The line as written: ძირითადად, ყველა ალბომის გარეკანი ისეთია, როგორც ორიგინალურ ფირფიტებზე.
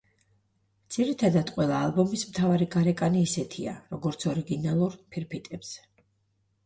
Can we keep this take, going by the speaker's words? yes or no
no